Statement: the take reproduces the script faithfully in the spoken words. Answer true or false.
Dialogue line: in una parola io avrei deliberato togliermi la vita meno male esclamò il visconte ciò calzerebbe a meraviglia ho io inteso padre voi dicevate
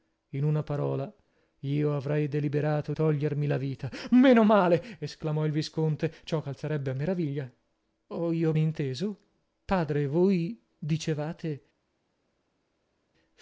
true